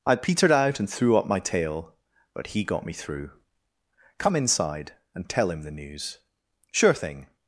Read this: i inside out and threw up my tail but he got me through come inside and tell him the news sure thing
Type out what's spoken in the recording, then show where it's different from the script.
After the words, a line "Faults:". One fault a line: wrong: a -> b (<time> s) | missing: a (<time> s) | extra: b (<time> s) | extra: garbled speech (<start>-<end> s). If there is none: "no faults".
i petered out and threw up my tail but he got me through come inside and tell him the news sure thing
Faults:
wrong: inside -> petered (0.1 s)